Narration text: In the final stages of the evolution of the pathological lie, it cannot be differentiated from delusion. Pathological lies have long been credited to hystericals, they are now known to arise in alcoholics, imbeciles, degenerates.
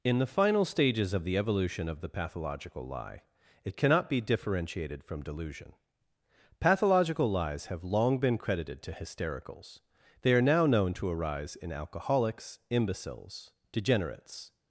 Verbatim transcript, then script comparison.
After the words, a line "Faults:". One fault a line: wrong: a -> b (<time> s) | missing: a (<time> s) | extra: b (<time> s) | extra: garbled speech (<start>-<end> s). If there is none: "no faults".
In the final stages of the evolution of the pathological lie, it cannot be differentiated from delusion. Pathological lies have long been credited to hystericals, they are now known to arise in alcoholics, imbeciles, degenerates.
Faults:
no faults